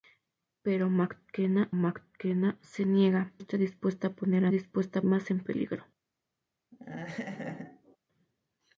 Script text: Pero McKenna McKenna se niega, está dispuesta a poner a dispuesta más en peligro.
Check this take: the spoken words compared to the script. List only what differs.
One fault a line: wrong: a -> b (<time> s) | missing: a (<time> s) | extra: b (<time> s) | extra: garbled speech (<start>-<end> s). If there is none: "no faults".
no faults